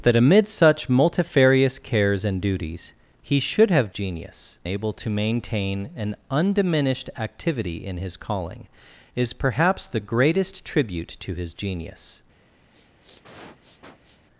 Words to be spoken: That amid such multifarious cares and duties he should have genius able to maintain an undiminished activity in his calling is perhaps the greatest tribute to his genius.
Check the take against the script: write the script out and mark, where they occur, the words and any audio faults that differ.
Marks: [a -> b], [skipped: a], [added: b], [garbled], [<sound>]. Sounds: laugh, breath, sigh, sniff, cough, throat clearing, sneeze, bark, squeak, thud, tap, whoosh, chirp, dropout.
That amid such multifarious cares and duties he should have genius able to maintain an undiminished activity in his calling is perhaps the greatest tribute to his genius. [sniff]